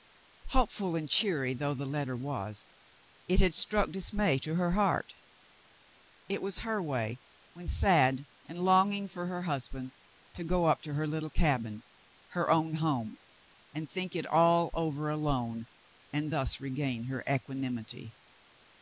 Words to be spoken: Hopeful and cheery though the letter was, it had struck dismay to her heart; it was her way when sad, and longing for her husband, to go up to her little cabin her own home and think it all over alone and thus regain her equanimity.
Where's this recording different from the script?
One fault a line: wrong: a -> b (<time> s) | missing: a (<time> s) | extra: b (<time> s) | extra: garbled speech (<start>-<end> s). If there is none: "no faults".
no faults